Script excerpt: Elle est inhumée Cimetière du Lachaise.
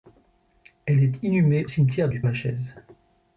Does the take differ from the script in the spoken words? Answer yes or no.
no